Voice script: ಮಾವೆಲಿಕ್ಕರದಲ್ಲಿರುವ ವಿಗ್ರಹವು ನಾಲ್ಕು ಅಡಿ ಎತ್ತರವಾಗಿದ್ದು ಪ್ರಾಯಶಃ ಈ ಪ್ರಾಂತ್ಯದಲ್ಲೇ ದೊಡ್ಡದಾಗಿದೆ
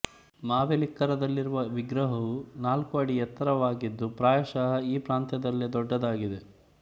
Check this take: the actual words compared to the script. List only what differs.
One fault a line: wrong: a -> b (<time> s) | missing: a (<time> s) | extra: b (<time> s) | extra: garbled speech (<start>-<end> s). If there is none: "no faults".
no faults